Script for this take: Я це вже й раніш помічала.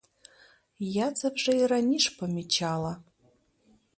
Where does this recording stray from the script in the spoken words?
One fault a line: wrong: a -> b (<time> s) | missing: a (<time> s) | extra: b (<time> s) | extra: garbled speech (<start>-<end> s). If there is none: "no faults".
no faults